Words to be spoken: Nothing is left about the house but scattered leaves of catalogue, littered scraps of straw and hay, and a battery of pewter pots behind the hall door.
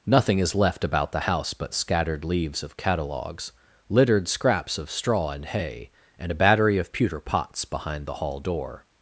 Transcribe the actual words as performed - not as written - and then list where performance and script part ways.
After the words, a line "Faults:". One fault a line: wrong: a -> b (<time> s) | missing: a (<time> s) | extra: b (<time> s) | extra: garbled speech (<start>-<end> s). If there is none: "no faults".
Nothing is left about the house but scattered leaves of catalogues, littered scraps of straw and hay, and a battery of pewter pots behind the hall door.
Faults:
wrong: catalogue -> catalogues (2.8 s)